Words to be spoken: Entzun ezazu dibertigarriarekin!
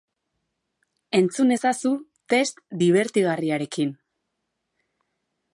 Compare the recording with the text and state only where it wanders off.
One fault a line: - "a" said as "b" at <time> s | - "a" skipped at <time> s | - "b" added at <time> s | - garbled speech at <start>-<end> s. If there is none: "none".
- "test" added at 2.3 s